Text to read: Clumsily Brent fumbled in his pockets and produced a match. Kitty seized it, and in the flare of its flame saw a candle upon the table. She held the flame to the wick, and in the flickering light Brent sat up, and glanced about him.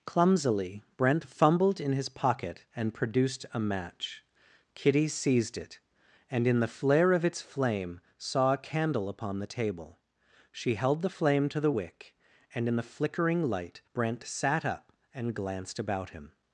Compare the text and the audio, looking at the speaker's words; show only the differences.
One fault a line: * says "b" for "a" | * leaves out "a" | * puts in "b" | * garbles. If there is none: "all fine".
* says "pocket" for "pockets"